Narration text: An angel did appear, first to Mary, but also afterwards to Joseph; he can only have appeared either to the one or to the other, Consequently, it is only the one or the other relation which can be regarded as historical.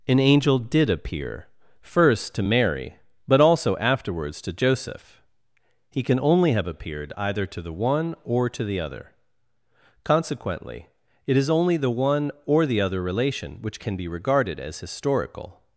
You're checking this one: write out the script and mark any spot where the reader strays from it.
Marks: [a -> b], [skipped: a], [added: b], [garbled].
An angel did appear, first to Mary, but also afterwards to Joseph; he can only have appeared either to the one or to the other, Consequently, it is only the one or the other relation which can be regarded as historical.